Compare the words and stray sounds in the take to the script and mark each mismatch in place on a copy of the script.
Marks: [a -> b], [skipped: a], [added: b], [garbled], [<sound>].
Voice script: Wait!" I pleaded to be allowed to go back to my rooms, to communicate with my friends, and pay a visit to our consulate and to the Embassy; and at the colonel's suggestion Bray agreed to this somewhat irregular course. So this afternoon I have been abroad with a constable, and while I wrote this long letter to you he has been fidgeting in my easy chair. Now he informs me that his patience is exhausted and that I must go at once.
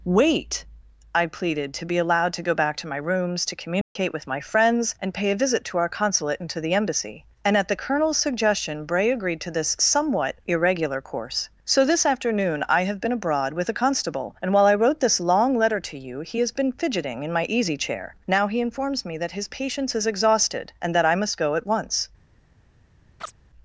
Wait!" I pleaded to be allowed to go back to my rooms, to communicate [dropout] with my friends, and pay a visit to our consulate and to the Embassy; and at the colonel's suggestion Bray agreed to this somewhat irregular course. So this afternoon I have been abroad with a constable, and while I wrote this long letter to you he has been fidgeting in my easy chair. Now he informs me that his patience is exhausted and that I must go at once. [chirp]